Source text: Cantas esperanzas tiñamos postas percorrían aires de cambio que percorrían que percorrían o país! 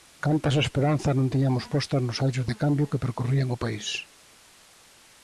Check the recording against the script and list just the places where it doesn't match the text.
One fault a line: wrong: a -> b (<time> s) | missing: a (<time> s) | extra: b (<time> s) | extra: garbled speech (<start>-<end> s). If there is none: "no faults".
extra: non (1.2 s)
wrong: percorrían -> nos (2.0 s)
missing: que percorrían (3.5 s)